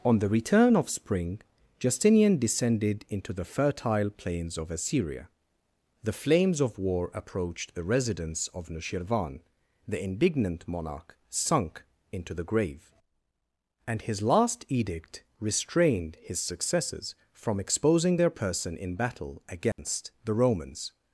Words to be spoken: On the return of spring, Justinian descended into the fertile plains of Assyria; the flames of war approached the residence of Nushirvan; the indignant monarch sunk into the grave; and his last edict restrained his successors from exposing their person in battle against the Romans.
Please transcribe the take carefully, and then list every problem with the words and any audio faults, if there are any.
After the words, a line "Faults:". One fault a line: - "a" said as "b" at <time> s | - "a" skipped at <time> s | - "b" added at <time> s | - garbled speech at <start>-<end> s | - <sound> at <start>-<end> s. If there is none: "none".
On the return of spring, Justinian descended into the fertile plains of Assyria; the flames of war approached the residence of Nushirvan; the indignant monarch sunk into the grave; and his last edict restrained his successors from exposing their person in battle against the Romans.
Faults:
- dropout at 19.7-19.8 s